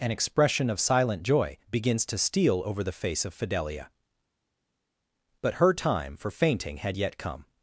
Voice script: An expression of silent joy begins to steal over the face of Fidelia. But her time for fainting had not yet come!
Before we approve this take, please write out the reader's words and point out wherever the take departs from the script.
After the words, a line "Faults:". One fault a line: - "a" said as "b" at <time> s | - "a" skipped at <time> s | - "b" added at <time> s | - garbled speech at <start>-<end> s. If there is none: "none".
An expression of silent joy begins to steal over the face of Fidelia. But her time for fainting had yet come!
Faults:
- "not" skipped at 7.0 s